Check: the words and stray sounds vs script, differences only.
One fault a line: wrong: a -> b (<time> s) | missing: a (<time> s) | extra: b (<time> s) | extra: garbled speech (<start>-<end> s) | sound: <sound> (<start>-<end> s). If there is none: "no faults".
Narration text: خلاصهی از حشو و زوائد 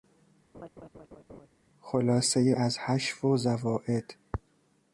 sound: laugh (0.5-1.5 s)